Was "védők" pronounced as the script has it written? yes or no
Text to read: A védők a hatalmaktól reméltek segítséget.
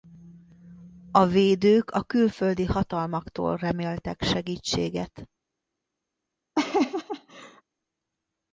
yes